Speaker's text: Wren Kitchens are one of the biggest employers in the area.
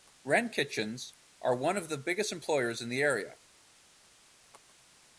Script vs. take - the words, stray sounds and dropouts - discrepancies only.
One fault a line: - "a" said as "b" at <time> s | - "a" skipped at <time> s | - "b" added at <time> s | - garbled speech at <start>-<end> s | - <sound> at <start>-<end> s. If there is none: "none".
none